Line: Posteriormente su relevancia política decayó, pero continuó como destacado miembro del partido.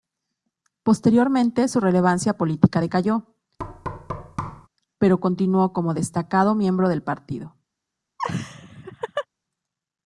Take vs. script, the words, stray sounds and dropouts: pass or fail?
fail